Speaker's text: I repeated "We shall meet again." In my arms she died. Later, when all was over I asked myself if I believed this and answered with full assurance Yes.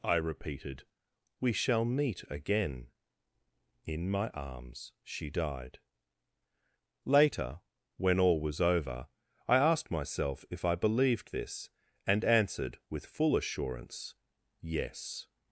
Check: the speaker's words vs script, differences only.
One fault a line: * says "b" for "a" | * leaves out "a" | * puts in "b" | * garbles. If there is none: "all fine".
all fine